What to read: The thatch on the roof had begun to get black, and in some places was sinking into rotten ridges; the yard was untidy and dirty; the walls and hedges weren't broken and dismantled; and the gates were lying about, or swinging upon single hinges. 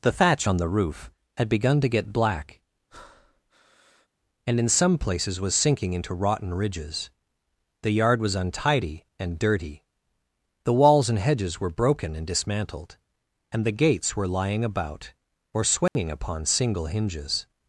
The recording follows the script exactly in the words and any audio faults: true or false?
false